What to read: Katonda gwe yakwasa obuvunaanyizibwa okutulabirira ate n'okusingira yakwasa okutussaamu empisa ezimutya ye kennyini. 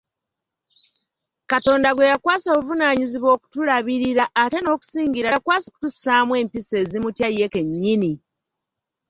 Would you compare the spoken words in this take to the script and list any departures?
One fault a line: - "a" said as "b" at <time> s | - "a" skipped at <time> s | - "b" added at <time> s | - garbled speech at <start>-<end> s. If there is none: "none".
none